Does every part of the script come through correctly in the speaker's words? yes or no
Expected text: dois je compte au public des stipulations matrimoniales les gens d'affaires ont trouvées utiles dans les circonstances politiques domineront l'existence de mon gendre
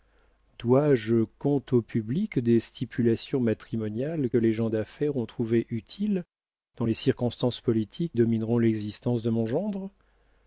yes